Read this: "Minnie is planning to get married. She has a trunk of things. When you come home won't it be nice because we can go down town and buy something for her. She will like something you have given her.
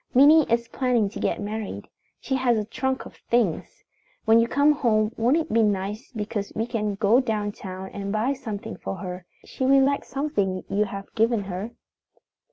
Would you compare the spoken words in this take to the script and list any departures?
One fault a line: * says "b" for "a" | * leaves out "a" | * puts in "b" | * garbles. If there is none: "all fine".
all fine